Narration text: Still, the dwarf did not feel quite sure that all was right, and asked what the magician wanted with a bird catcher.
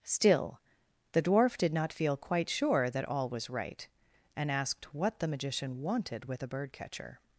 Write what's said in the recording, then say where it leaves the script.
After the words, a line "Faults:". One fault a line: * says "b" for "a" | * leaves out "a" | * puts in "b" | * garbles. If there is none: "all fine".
Still, the dwarf did not feel quite sure that all was right, and asked what the magician wanted with a bird catcher.
Faults:
all fine